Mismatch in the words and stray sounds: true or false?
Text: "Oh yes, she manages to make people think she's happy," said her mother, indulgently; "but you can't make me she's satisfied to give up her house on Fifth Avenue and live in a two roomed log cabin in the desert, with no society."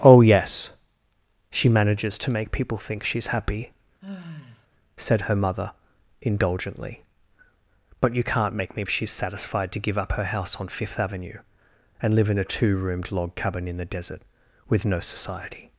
true